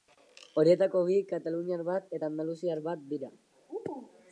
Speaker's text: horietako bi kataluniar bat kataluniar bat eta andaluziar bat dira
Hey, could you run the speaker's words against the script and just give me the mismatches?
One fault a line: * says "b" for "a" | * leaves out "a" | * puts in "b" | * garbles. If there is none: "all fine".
* leaves out "kataluniar bat"